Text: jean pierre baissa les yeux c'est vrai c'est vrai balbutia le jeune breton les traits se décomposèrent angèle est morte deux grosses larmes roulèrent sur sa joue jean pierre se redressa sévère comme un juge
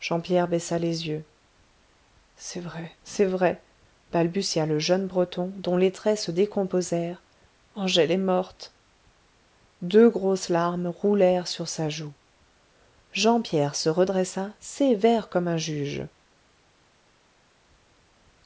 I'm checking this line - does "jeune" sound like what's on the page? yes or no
yes